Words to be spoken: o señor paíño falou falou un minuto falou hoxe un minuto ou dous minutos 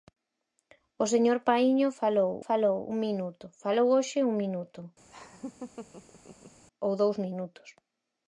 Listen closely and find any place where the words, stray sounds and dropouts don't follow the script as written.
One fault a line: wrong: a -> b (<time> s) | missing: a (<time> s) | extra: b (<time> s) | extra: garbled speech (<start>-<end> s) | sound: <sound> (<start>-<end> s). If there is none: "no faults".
sound: laugh (5.1-6.6 s)